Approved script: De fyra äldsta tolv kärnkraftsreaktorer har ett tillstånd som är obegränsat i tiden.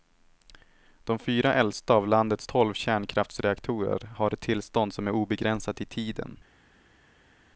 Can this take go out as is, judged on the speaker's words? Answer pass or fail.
fail